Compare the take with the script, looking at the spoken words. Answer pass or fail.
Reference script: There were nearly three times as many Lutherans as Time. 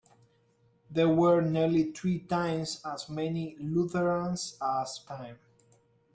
pass